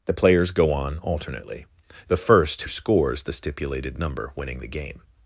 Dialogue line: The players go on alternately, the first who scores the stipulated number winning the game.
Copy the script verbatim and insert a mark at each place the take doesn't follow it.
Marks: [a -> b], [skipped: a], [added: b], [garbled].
The players go on alternately, the first [skipped: who] scores the stipulated number winning the game.